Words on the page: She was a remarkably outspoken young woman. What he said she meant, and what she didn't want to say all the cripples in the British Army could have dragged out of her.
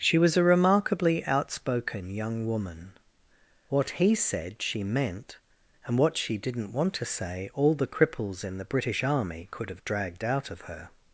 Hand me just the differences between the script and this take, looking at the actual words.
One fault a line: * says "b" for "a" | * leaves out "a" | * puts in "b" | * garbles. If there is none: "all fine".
all fine